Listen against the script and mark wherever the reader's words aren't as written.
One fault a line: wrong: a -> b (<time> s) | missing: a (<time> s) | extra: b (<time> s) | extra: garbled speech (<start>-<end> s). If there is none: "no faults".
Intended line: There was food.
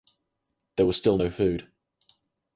extra: still no (0.9 s)